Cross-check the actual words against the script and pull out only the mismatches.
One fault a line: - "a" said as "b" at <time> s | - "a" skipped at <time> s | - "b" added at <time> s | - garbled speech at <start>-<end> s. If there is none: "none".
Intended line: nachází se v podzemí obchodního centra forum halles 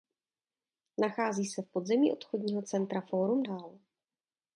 none